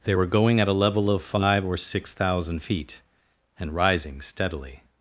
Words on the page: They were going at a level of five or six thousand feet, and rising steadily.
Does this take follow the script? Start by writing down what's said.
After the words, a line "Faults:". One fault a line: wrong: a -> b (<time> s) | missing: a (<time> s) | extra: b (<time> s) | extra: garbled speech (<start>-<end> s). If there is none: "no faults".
They were going at a level of five or six thousand feet, and rising steadily.
Faults:
no faults